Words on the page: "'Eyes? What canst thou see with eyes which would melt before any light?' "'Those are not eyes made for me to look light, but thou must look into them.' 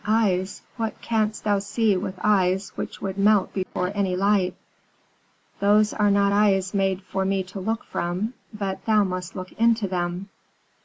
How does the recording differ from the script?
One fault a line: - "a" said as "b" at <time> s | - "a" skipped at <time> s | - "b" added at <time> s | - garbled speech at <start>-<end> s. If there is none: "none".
- "light" said as "from" at 7.8 s